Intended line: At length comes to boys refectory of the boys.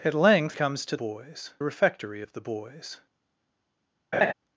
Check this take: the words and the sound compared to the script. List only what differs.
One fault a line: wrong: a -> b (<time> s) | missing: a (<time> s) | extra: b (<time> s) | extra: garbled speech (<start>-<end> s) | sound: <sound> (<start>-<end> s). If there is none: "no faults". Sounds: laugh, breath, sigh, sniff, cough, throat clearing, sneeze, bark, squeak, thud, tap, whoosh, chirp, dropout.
sound: laugh (4.1-4.3 s)